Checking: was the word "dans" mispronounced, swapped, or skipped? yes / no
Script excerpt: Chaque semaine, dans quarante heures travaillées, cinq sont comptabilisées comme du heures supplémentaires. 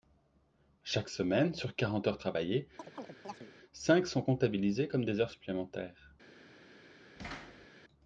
yes